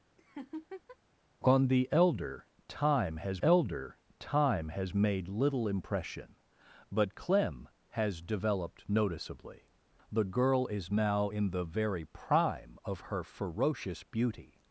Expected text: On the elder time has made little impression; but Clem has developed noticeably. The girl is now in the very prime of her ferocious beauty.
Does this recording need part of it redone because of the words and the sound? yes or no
yes